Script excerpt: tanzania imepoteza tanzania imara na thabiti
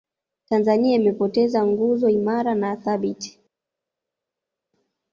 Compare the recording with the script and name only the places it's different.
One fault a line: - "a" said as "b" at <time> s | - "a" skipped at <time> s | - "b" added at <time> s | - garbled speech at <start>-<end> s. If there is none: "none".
- "tanzania" said as "nguzo" at 1.6 s